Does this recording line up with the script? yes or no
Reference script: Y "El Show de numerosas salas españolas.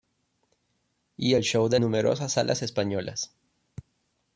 yes